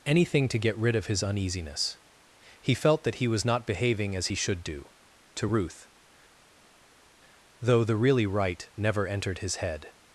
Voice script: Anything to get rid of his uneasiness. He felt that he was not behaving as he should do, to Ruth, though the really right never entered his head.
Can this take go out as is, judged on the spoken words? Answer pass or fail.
pass